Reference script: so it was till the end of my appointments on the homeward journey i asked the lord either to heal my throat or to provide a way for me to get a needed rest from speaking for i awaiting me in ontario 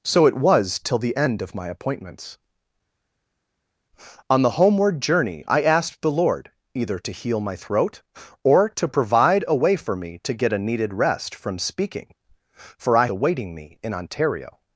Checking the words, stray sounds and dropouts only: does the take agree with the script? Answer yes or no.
yes